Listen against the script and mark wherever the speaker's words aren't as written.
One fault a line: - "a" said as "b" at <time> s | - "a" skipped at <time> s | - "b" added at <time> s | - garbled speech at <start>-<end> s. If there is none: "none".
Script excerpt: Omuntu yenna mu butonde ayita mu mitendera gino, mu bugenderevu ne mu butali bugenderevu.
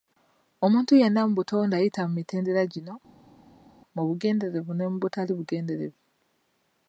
none